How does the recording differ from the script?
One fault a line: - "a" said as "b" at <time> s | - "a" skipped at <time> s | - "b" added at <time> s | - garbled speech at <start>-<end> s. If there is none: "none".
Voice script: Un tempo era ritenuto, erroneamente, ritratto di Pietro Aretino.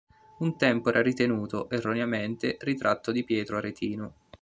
none